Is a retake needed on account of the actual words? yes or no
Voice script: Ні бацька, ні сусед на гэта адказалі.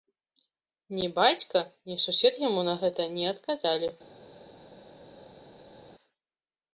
yes